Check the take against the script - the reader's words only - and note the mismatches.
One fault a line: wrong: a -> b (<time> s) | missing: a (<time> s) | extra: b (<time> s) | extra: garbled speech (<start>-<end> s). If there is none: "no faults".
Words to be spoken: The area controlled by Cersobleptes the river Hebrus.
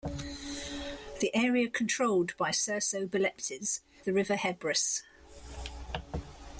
no faults